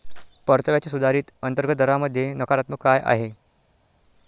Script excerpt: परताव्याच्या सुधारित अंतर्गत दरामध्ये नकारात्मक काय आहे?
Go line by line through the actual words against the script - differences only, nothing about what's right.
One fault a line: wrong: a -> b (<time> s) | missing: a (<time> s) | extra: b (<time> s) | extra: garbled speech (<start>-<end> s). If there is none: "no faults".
no faults